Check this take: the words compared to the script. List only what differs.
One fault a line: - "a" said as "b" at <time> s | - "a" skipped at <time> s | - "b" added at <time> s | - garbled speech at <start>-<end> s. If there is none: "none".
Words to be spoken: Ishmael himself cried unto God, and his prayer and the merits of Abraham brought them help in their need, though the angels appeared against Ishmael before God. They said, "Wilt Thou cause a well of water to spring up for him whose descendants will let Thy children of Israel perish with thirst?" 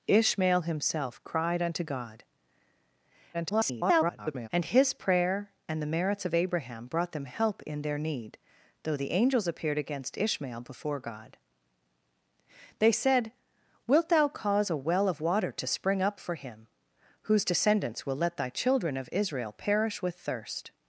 - garbled speech at 3.3-4.5 s